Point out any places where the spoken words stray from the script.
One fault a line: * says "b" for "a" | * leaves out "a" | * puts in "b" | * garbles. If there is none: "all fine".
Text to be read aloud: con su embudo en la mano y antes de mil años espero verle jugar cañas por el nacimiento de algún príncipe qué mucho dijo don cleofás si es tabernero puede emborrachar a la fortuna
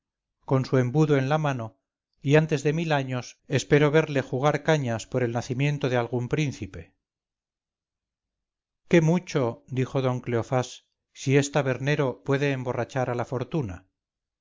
all fine